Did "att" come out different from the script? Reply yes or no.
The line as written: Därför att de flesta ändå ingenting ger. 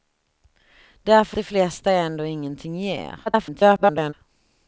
yes